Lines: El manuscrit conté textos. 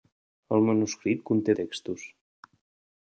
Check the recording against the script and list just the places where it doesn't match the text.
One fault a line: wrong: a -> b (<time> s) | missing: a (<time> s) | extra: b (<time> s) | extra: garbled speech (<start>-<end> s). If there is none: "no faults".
no faults